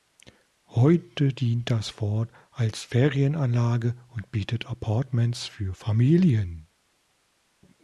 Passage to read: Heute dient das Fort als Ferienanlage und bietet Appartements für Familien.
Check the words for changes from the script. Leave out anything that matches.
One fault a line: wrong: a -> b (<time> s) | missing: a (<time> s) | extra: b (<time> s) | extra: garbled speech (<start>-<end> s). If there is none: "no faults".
no faults